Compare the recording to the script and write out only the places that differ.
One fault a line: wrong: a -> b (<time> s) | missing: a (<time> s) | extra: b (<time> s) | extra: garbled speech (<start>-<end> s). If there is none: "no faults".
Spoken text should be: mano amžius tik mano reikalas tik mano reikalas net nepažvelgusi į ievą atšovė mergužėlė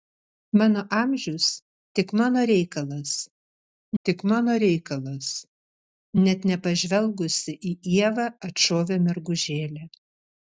no faults